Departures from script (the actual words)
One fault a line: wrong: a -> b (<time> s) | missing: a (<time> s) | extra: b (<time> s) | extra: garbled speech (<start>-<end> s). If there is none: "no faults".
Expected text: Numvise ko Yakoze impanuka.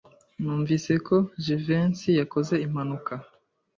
extra: Jivency (1.4 s)